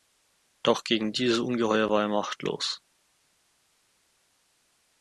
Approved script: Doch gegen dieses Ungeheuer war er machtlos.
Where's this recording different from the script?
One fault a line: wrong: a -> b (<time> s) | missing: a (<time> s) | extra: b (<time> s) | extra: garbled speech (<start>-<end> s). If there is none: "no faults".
no faults